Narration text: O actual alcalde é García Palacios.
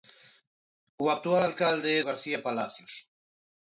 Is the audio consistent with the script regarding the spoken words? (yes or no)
yes